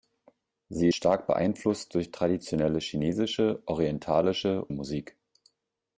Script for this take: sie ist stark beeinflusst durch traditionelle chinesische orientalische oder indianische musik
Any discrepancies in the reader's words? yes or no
yes